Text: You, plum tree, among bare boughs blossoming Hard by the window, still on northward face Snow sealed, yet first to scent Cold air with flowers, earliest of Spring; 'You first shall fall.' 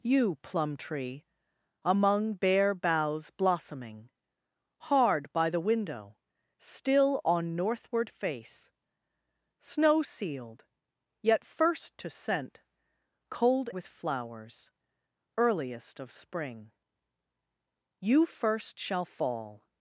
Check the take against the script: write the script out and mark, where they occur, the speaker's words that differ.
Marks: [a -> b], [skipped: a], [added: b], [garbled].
You, plum tree, among bare boughs blossoming Hard by the window, still on northward face Snow sealed, yet first to scent Cold [skipped: air] with flowers, earliest of Spring; 'You first shall fall.'